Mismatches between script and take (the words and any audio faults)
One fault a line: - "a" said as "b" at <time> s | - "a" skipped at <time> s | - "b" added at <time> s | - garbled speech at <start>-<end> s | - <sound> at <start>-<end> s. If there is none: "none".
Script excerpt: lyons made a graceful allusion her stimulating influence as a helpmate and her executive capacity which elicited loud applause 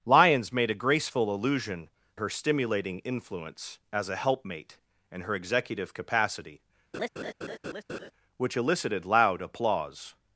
- laugh at 6.9-8.1 s